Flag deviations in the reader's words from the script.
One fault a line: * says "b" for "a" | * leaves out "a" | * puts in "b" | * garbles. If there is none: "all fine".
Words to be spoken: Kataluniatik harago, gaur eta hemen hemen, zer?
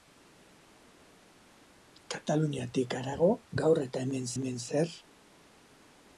all fine